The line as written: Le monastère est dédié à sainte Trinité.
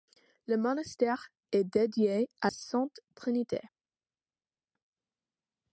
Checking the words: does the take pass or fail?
pass